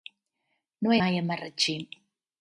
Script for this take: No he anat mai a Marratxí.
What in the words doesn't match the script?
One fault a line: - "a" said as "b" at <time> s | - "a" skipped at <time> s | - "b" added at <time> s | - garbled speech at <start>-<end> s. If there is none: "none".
- "anat" skipped at 1.0 s